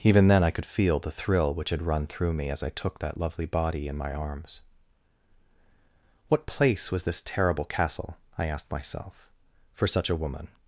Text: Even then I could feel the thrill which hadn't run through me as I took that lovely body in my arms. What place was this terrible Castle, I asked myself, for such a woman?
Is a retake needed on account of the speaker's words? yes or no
yes